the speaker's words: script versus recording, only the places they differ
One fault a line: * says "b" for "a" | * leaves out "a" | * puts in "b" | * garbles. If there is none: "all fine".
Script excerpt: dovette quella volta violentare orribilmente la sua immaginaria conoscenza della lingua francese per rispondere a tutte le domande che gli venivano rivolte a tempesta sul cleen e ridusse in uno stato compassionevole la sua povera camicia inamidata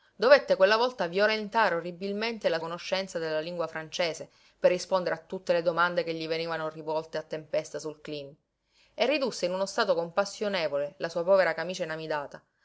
* leaves out "sua immaginaria"